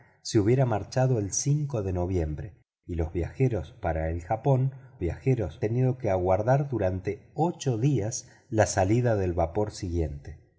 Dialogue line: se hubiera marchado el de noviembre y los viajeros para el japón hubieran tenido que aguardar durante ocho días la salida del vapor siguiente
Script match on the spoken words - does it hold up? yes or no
no